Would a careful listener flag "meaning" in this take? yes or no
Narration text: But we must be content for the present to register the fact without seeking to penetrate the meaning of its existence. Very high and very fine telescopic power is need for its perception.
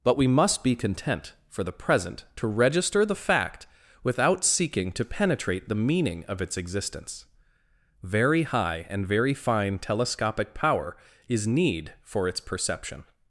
no